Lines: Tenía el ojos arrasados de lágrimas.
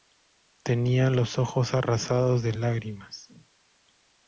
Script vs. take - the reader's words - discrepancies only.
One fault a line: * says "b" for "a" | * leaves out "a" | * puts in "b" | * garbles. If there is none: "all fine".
* says "los" for "el"